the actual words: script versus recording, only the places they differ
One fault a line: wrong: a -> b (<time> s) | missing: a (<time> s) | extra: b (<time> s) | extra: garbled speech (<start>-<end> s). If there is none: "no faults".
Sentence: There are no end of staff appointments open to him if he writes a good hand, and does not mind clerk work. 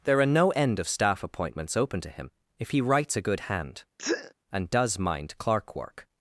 missing: not (5.0 s)